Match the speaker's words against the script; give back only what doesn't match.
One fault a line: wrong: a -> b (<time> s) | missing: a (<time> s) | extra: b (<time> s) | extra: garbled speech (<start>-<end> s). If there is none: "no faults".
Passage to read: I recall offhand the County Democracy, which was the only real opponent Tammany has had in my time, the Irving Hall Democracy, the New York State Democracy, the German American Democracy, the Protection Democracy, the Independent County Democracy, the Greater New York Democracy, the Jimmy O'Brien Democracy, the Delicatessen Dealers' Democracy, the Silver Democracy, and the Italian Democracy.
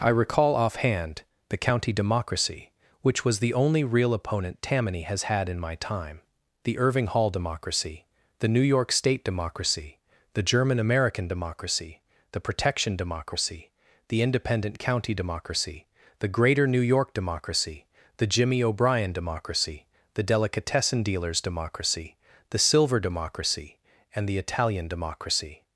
no faults